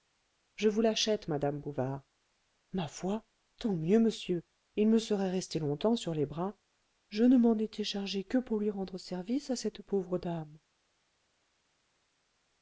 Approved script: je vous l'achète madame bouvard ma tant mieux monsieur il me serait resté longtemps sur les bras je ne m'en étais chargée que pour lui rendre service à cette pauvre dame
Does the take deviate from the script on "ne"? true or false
false